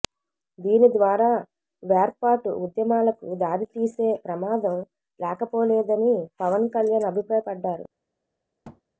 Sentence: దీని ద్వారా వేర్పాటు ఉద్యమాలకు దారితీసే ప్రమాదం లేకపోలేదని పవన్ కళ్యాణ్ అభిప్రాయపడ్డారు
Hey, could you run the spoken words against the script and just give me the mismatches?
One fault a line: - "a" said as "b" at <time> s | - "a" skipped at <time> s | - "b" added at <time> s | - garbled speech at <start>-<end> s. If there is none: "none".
none